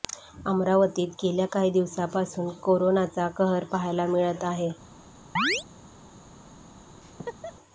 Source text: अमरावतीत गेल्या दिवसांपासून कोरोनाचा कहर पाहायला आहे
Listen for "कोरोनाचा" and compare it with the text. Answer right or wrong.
right